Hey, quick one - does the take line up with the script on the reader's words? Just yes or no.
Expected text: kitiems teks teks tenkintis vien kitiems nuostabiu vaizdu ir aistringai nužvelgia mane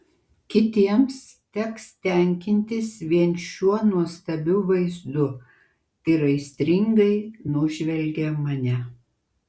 no